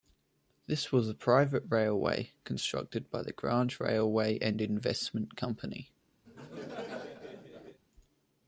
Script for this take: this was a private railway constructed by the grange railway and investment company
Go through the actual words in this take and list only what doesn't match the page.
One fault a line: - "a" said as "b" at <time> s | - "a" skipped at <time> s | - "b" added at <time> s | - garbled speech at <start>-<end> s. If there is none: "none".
none